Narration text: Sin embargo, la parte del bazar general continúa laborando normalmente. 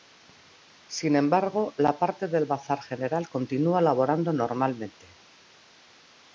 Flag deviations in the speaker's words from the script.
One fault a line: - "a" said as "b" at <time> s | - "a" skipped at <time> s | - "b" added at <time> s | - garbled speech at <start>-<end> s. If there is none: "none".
none